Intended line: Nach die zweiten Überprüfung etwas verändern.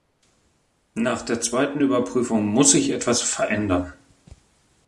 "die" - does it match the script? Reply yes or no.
no